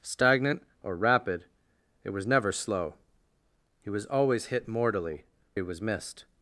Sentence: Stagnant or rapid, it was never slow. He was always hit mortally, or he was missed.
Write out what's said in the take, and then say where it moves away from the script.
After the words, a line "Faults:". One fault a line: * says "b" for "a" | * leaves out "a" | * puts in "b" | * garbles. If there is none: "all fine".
Stagnant or rapid, it was never slow. He was always hit mortally, he was missed.
Faults:
* leaves out "or"